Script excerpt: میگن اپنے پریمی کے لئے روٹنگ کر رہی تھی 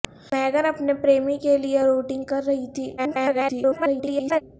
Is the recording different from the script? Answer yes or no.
yes